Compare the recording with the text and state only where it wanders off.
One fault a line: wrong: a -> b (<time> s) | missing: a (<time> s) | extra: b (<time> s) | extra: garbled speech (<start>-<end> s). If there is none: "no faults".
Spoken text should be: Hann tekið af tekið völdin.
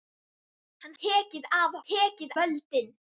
no faults